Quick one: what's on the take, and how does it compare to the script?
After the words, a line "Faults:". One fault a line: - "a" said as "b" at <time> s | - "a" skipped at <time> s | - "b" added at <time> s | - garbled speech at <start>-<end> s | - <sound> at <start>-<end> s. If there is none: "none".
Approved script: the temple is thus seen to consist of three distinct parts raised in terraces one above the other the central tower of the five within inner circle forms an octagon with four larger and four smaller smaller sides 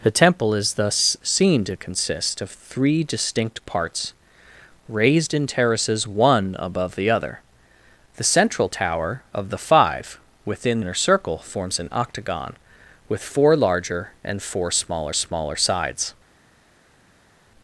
the temple is thus seen to consist of three distinct parts raised in terraces one above the other the central tower of the five within inner circle forms an octagon with four larger and four smaller smaller sides
Faults:
none